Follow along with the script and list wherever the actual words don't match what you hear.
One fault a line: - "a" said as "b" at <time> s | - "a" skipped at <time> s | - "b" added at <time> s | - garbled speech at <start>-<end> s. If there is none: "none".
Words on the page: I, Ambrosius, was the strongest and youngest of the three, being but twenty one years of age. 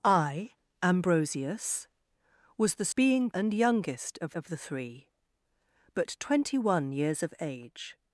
- "strongest" said as "being" at 2.9 s
- "of" added at 4.3 s
- "being" skipped at 5.1 s